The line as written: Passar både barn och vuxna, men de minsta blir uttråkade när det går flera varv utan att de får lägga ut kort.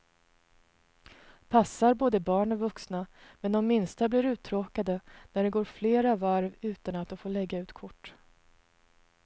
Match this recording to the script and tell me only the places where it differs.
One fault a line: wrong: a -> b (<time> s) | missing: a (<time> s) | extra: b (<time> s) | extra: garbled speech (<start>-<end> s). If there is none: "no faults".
no faults